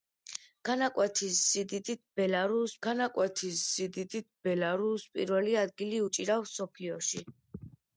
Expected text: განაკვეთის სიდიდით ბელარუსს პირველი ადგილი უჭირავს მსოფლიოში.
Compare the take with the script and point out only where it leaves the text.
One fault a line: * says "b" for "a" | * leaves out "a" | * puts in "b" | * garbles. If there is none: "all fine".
* puts in "განაკვეთის სიდიდით ბელარუსს"